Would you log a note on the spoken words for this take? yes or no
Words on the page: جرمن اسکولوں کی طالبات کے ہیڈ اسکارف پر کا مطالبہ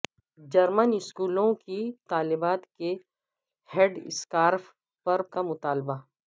no